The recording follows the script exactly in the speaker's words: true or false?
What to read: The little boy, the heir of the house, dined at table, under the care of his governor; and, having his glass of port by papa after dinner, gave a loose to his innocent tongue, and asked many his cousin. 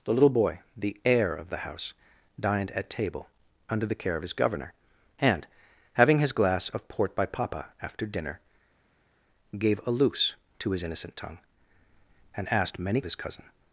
true